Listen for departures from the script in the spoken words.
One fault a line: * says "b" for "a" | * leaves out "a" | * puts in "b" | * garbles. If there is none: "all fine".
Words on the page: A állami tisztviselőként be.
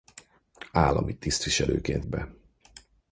all fine